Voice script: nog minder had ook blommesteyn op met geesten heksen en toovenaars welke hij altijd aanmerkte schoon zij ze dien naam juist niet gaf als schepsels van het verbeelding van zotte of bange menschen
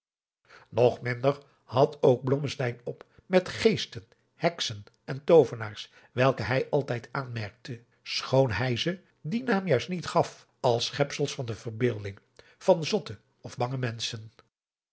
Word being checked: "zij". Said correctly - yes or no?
no